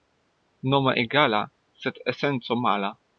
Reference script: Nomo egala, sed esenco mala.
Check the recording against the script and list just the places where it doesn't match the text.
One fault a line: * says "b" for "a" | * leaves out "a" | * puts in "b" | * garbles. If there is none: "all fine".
all fine